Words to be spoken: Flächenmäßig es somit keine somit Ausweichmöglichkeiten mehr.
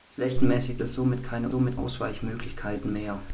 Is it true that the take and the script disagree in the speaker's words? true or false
false